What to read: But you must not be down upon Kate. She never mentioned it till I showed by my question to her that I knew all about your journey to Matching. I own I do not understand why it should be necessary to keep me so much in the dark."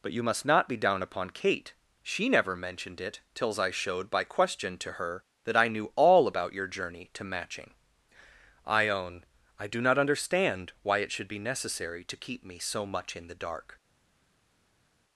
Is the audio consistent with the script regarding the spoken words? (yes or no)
no